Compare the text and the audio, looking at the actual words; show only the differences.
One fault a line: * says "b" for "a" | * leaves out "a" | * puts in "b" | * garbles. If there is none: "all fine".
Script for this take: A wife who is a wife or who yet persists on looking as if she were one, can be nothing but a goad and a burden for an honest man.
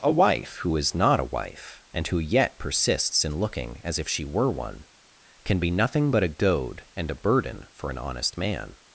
* puts in "not"
* says "and" for "or"
* says "in" for "on"